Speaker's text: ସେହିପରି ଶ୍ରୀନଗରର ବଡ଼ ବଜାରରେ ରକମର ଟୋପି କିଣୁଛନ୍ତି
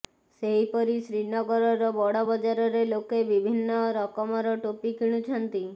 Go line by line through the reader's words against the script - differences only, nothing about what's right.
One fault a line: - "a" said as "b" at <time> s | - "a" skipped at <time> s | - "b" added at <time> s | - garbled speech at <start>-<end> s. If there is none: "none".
- "ଲୋକେ ବିଭିନ୍ନ" added at 2.9 s